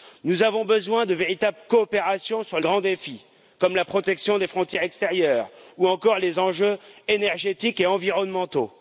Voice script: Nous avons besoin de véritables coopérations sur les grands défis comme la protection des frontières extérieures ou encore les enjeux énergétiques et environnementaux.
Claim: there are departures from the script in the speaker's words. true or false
true